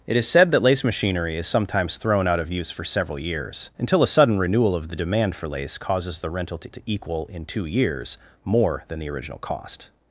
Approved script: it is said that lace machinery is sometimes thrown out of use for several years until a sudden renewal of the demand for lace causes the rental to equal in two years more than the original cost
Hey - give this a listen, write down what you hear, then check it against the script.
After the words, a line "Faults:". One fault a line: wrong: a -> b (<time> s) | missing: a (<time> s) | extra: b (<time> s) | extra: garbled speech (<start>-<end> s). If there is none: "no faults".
it is said that lace machinery is sometimes thrown out of use for several years until a sudden renewal of the demand for lace causes the rental to to equal in two years more than the original cost
Faults:
extra: to (6.7 s)